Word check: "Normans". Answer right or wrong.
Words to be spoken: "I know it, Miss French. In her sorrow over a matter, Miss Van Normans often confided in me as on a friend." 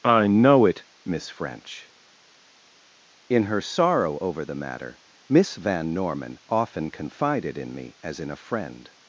wrong